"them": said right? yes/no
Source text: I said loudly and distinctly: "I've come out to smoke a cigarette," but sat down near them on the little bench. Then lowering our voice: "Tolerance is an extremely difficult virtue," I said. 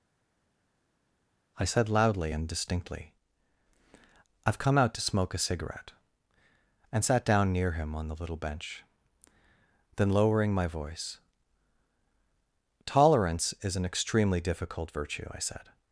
no